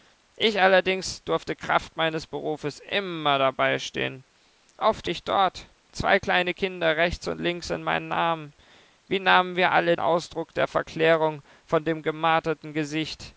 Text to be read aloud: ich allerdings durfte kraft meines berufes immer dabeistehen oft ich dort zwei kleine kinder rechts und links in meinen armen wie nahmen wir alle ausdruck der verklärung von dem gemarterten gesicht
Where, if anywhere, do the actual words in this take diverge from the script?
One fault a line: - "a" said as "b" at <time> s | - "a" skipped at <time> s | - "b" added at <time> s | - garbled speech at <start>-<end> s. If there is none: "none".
none